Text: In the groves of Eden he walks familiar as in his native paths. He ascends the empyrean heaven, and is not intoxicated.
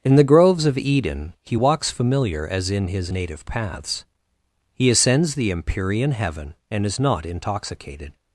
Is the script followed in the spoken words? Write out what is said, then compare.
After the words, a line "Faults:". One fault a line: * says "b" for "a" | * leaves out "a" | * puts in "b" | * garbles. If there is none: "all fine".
In the groves of Eden he walks familiar as in his native paths. He ascends the empyrean heaven, and is not intoxicated.
Faults:
all fine